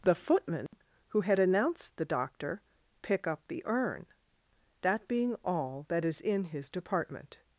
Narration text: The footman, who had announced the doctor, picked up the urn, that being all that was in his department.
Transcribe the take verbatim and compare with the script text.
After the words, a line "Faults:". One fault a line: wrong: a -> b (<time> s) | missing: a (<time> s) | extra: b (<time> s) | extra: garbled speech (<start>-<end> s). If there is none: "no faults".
The footman, who had announced the doctor, pick up the urn, that being all that is in his department.
Faults:
wrong: picked -> pick (3.0 s)
wrong: was -> is (6.1 s)